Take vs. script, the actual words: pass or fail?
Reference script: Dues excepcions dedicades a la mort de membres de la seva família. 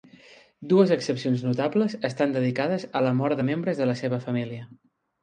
fail